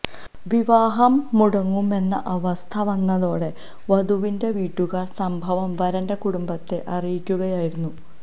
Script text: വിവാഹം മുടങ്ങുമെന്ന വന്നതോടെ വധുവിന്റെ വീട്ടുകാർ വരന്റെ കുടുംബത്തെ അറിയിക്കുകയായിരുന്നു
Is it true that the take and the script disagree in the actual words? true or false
true